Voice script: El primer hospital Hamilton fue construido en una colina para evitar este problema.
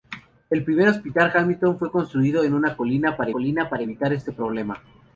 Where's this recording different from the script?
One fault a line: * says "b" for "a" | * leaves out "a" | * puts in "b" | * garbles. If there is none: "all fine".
* puts in "colina para"